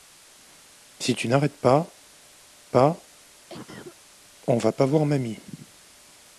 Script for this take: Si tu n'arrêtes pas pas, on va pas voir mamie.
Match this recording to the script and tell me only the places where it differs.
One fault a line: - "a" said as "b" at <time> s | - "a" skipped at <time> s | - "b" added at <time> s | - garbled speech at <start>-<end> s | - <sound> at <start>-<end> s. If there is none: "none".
- cough at 3.5-4.0 s